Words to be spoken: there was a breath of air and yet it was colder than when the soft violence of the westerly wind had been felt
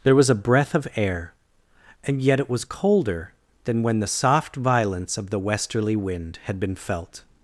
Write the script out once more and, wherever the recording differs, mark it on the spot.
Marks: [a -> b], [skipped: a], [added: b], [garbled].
there was a breath of air and yet it was colder than when the soft violence of the westerly wind had been felt